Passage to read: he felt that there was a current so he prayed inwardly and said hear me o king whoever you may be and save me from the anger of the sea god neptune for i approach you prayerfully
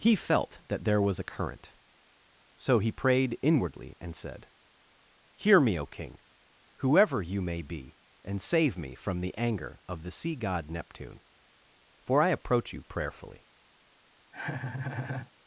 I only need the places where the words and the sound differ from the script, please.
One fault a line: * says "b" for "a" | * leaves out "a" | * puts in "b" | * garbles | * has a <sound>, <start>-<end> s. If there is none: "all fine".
* has a laugh, 14.3-15.3 s